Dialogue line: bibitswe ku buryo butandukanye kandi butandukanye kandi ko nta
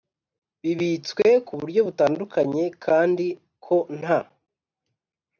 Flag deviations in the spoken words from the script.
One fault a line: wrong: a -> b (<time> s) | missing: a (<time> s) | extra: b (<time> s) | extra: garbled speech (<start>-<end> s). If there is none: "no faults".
missing: butandukanye kandi (3.3 s)